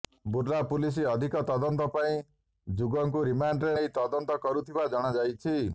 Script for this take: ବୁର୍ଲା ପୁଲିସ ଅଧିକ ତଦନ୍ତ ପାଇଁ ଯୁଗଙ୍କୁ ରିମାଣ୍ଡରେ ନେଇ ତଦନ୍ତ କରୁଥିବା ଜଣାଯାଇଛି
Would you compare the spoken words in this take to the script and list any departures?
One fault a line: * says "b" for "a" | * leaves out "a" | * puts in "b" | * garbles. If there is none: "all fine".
all fine